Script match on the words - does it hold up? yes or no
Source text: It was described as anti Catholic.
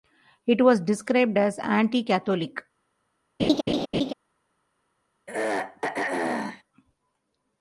yes